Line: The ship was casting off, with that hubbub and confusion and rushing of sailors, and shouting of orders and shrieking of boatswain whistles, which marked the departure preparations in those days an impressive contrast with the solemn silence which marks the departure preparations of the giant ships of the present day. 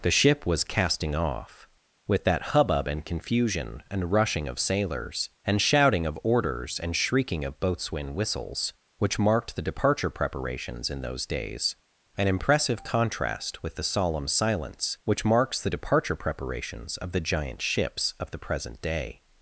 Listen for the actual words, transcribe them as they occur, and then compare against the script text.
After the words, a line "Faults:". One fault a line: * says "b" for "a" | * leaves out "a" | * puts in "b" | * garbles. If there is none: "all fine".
The ship was casting off, with that hubbub and confusion and rushing of sailors, and shouting of orders and shrieking of boatswain whistles, which marked the departure preparations in those days an impressive contrast with the solemn silence which marks the departure preparations of the giant ships of the present day.
Faults:
all fine